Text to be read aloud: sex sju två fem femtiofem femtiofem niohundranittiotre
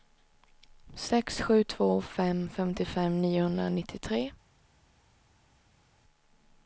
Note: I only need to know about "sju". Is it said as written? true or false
true